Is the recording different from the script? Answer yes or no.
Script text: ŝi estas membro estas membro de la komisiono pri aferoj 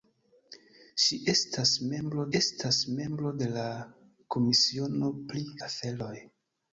no